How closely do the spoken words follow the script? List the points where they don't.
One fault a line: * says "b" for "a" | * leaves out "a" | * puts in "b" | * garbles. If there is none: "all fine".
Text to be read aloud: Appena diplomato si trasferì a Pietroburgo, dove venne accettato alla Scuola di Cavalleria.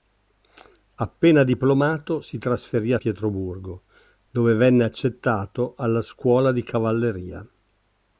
all fine